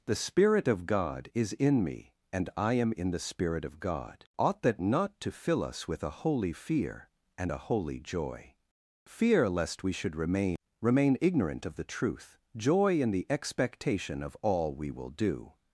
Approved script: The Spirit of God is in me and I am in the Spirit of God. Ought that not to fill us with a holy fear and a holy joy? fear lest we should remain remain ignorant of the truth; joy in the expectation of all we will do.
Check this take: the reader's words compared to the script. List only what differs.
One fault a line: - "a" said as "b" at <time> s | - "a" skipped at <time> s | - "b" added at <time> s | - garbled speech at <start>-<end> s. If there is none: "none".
none